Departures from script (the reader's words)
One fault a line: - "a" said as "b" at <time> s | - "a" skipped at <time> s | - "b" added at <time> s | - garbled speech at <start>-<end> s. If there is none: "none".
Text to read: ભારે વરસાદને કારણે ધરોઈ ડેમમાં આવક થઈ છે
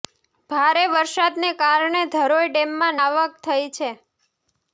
none